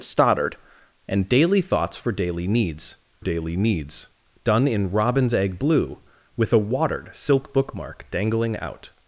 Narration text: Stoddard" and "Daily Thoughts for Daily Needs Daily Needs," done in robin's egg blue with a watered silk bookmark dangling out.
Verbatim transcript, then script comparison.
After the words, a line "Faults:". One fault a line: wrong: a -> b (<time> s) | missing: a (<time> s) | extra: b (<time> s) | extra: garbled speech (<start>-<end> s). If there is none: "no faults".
Stoddard" and "Daily Thoughts for Daily Needs Daily Needs," done in robin's egg blue with a watered silk bookmark dangling out.
Faults:
no faults